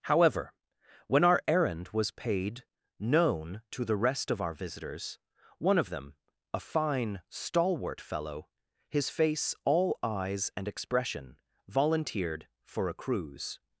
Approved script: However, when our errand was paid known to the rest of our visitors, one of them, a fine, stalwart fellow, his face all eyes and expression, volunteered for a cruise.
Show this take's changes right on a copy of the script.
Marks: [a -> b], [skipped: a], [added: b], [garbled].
However, when our errand was paid known to the rest of our visitors, one of them, a fine, stalwart fellow, his face all eyes and expression, volunteered for a cruise.